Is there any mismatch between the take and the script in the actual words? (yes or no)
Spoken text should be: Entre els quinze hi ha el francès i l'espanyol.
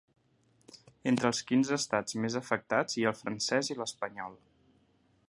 yes